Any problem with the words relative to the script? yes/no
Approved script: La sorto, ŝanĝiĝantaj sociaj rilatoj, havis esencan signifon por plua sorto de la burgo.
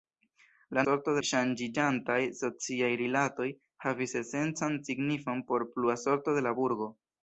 no